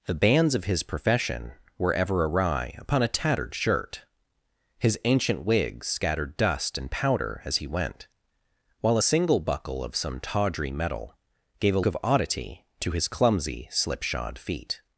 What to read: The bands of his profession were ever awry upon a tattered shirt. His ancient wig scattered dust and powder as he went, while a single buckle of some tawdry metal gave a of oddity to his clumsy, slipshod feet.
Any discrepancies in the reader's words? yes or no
no